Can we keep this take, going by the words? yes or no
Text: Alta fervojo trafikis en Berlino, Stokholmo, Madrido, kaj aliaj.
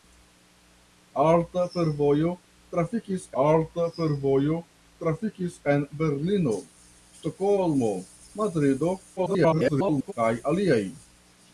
no